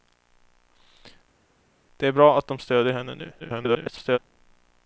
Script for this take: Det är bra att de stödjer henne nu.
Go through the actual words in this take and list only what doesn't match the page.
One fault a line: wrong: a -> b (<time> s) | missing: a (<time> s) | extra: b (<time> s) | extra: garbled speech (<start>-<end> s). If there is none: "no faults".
extra: garbled speech (3.4-4.2 s)